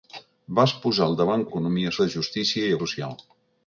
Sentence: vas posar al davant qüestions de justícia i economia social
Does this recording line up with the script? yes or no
no